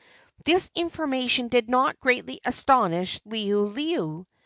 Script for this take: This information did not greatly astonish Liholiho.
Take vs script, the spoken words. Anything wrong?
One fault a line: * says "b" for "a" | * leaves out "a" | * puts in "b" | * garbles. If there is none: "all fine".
all fine